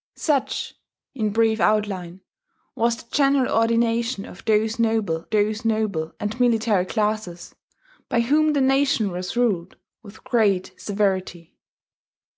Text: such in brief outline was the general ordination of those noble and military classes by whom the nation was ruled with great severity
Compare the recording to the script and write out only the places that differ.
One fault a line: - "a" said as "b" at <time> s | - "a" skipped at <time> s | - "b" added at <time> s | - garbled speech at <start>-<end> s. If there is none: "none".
- "those noble" added at 5.3 s